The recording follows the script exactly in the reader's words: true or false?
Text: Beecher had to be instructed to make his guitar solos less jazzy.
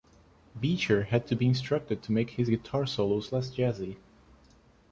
true